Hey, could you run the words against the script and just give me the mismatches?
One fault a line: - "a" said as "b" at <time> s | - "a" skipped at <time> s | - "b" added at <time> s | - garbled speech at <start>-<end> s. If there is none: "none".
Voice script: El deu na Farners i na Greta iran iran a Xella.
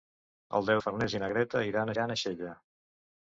none